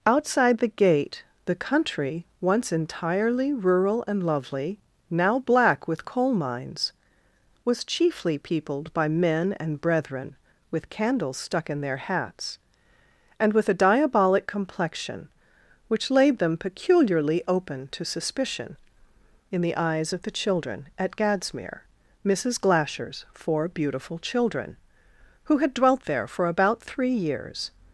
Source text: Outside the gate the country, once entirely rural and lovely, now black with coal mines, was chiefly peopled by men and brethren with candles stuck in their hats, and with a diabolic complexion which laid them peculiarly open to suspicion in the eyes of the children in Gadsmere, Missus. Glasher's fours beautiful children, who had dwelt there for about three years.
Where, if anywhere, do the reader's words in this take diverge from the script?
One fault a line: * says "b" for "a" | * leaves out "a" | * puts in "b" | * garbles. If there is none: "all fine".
* says "at" for "in"
* says "four" for "fours"